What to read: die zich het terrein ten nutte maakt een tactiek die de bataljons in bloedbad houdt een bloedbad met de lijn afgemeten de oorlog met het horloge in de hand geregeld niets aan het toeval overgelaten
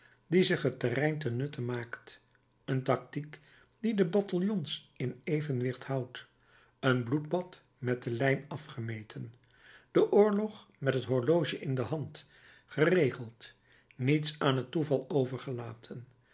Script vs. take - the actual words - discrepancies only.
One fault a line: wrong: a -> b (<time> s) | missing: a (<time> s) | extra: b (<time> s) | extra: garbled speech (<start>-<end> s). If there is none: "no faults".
wrong: bloedbad -> evenwicht (5.2 s)